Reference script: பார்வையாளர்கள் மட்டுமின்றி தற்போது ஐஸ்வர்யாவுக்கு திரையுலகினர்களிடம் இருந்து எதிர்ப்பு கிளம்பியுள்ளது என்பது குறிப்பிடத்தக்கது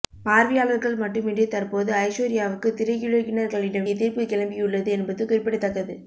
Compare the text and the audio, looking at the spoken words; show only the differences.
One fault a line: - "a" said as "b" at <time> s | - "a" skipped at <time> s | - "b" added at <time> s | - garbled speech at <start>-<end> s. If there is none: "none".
- "இருந்து" skipped at 3.9 s